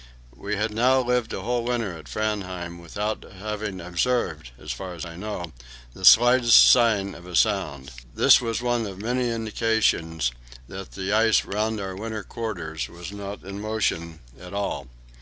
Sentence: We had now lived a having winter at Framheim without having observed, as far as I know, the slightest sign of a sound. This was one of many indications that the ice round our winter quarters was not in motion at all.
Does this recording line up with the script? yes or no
no